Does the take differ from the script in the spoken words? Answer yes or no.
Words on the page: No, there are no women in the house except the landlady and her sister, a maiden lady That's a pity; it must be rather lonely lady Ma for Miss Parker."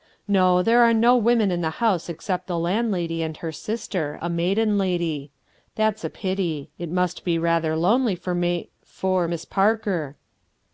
yes